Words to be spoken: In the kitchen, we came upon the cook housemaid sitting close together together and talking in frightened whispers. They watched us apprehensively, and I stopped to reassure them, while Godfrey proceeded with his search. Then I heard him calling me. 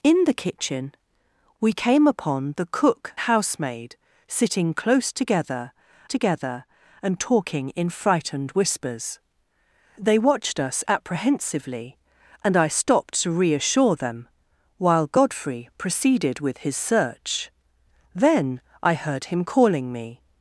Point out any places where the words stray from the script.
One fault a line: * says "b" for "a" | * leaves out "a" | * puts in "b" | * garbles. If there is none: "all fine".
all fine